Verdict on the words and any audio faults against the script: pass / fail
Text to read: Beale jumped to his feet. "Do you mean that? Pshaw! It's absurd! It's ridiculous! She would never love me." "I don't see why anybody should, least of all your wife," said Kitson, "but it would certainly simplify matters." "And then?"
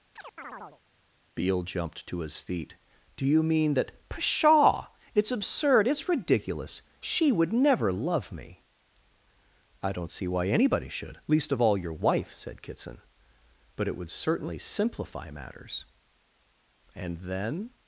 fail